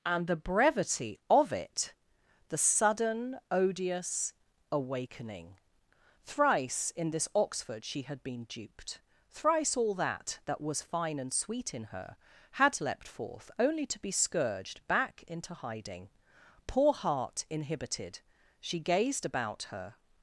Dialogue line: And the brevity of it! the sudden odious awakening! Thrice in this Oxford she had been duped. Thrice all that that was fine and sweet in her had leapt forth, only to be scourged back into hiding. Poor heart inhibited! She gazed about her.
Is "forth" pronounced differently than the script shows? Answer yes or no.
no